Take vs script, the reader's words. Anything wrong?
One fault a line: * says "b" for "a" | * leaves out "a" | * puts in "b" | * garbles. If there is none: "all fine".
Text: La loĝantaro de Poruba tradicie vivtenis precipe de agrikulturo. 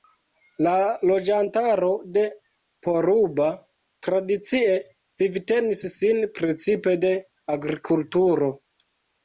* puts in "sin"